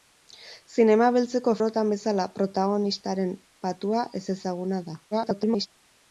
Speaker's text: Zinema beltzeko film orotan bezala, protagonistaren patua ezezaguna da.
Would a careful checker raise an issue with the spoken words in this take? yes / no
yes